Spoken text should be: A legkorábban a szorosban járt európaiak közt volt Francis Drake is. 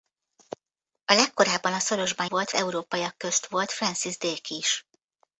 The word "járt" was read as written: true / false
false